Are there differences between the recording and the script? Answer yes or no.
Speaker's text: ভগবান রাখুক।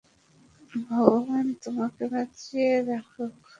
yes